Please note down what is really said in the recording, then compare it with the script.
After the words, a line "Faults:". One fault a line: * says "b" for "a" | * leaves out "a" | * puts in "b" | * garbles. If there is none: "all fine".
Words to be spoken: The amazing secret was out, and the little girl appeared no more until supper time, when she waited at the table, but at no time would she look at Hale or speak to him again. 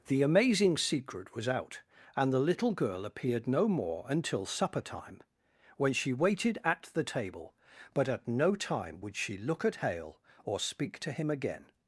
The amazing secret was out, and the little girl appeared no more until supper time, when she waited at the table, but at no time would she look at Hale or speak to him again.
Faults:
all fine